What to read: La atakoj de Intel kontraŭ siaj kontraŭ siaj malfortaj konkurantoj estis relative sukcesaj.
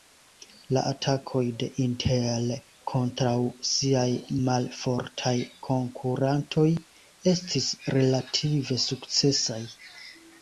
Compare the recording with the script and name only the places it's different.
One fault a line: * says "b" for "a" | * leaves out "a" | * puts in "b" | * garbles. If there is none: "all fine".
* leaves out "kontraŭ siaj"